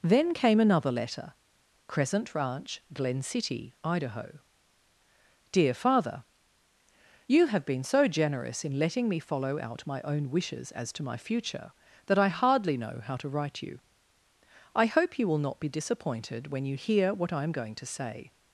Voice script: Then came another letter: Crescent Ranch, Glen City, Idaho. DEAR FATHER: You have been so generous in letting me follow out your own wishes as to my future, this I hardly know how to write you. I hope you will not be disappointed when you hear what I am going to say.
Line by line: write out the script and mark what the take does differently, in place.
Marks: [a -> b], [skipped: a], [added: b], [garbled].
Then came another letter: Crescent Ranch, Glen City, Idaho. DEAR FATHER: You have been so generous in letting me follow out [your -> my] own wishes as to my future, [this -> that] I hardly know how to write you. I hope you will not be disappointed when you hear what I am going to say.